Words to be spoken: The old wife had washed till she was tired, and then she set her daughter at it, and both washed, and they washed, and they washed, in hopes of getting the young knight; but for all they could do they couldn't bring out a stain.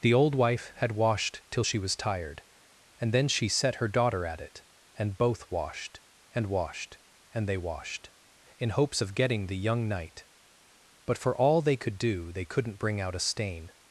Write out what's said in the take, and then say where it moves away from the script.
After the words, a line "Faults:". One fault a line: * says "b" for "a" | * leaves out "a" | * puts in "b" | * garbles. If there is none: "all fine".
The old wife had washed till she was tired, and then she set her daughter at it, and both washed, and washed, and they washed, in hopes of getting the young knight; but for all they could do they couldn't bring out a stain.
Faults:
* leaves out "they"